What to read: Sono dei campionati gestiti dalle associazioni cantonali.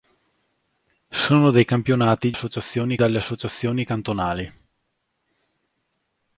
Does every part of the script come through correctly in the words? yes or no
no